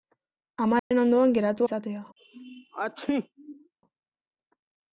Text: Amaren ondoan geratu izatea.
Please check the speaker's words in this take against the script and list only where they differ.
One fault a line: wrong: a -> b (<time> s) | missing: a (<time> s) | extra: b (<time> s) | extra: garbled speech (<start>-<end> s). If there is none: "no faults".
no faults